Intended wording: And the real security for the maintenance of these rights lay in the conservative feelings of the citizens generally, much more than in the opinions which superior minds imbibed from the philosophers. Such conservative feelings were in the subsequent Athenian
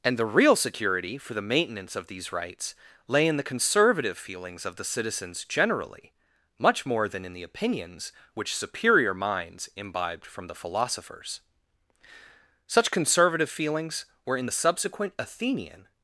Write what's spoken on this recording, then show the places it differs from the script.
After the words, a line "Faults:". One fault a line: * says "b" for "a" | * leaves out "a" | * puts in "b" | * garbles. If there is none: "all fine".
And the real security for the maintenance of these rights lay in the conservative feelings of the citizens generally, much more than in the opinions which superior minds imbibed from the philosophers. Such conservative feelings were in the subsequent Athenian
Faults:
all fine